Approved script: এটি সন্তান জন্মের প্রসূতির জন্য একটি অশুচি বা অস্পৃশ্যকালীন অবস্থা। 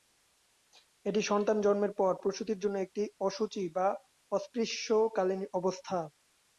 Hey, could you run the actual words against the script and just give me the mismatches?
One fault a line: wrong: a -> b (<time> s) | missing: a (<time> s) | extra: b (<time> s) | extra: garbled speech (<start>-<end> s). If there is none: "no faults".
extra: পর (2.0 s)